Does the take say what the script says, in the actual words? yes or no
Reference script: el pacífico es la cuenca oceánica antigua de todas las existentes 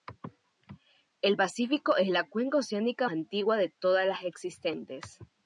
yes